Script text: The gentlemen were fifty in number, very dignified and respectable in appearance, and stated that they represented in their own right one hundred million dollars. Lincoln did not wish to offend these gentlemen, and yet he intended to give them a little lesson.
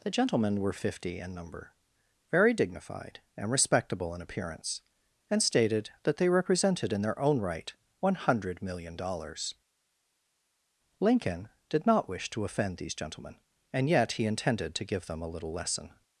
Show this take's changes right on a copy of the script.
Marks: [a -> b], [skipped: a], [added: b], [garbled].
The gentlemen were fifty in number, very dignified and respectable in appearance, and stated that they represented in their own right one hundred million dollars. Lincoln did not wish to offend these gentlemen, and yet he intended to give them a little lesson.